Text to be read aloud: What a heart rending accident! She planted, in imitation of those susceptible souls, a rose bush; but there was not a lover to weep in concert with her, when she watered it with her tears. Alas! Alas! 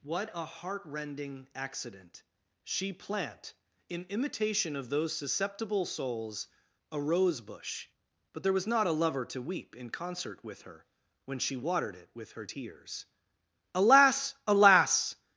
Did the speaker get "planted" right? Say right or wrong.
wrong